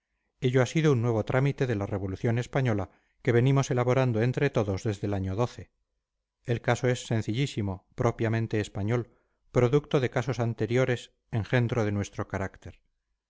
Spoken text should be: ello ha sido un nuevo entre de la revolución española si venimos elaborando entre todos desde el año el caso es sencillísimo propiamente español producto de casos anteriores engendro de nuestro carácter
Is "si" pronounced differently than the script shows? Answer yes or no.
yes